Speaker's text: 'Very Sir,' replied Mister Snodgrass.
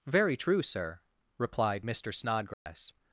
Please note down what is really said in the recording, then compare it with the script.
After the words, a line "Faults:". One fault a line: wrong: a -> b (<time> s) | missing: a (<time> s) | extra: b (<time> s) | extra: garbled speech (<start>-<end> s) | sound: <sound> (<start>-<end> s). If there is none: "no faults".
'Very true, Sir,' replied Mister Snodgrass.
Faults:
extra: true (0.3 s)
sound: dropout (2.5-2.7 s)